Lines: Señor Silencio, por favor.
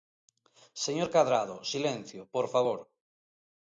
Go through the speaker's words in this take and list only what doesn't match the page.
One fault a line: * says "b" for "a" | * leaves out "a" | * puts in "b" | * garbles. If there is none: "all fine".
* puts in "Cadrado"